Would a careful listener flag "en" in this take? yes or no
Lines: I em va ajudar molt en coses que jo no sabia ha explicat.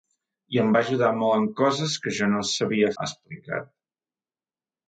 no